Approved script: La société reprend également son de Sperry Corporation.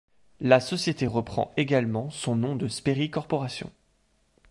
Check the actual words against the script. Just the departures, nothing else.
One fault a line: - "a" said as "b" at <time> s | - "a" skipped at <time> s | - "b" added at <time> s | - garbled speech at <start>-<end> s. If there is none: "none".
- "nom" added at 2.4 s